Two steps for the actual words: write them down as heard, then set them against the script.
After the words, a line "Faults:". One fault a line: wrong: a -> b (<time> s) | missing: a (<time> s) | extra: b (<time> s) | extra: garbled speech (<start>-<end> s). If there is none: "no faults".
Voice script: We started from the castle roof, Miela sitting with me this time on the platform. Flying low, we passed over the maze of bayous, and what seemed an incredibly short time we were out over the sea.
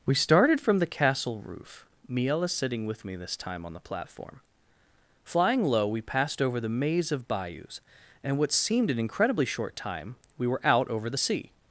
We started from the castle roof, Miela sitting with me this time on the platform. Flying low, we passed over the maze of bayous, and what seemed an incredibly short time we were out over the sea.
Faults:
no faults